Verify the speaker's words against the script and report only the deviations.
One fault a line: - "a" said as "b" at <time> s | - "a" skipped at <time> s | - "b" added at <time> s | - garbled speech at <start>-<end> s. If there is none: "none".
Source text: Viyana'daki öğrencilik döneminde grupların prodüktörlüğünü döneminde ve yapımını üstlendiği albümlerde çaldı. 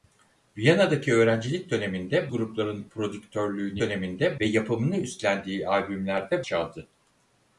none